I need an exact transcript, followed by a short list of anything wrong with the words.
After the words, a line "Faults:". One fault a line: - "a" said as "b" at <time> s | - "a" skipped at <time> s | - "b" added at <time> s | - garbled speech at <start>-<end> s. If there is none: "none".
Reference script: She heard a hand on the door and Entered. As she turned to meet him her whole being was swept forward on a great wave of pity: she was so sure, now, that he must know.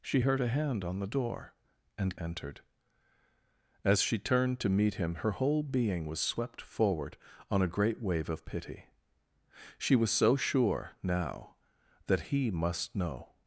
She heard a hand on the door and Entered. As she turned to meet him her whole being was swept forward on a great wave of pity: she was so sure, now, that he must know.
Faults:
none